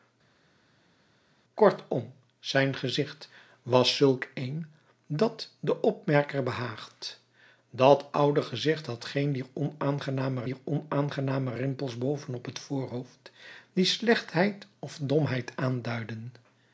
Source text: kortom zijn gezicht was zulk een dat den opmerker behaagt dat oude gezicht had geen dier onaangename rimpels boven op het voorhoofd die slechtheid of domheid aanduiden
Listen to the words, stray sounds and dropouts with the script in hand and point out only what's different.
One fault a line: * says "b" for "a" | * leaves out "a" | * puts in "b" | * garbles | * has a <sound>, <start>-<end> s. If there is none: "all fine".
* puts in "dier onaangename"